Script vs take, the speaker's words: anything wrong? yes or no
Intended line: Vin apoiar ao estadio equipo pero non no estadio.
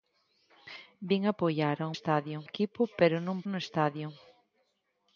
no